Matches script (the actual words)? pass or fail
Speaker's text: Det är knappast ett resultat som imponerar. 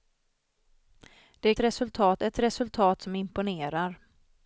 fail